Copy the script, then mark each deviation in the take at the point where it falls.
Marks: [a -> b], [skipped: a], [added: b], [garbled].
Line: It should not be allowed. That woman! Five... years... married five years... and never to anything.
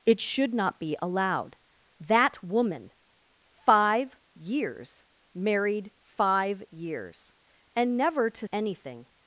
It should not be allowed. That woman! Five... years... married five years... and never to anything.